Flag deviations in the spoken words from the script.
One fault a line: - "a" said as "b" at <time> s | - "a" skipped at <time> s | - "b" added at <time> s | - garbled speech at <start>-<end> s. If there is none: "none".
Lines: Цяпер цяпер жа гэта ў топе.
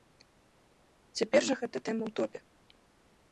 - "цяпер" skipped at 1.4 s
- "тэма" added at 1.9 s